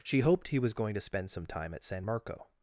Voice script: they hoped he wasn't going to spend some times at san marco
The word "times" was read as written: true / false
false